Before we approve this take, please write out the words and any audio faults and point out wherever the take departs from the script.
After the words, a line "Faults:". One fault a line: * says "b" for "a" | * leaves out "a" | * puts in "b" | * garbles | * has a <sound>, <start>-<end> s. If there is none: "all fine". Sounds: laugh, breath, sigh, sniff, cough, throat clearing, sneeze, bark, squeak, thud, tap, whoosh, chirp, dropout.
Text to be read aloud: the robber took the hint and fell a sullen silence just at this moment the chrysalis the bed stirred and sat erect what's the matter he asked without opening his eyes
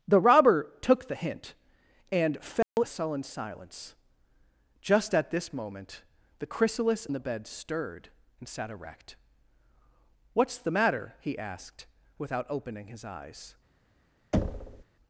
the robber took the hint and fell a sullen silence just at this moment the chrysalis the bed stirred and sat erect what's the matter he asked without opening his eyes
Faults:
* has a dropout, 2.6-2.8 s
* has a thud, 14.3-14.8 s